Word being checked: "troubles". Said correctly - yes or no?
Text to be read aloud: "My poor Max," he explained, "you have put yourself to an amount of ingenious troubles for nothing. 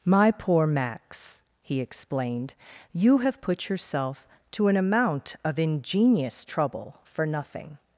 no